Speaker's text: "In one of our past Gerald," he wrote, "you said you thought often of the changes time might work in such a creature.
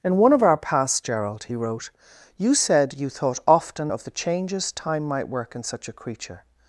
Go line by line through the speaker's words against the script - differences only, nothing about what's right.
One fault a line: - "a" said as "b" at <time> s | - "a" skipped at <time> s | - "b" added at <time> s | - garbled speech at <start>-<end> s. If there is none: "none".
none